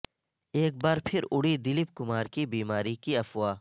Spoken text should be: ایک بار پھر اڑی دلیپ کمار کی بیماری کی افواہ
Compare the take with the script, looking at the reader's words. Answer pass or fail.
pass